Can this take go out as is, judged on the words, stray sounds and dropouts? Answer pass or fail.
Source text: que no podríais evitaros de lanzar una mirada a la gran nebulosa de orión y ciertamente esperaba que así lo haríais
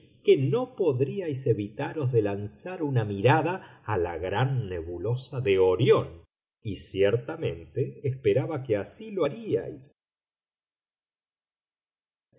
pass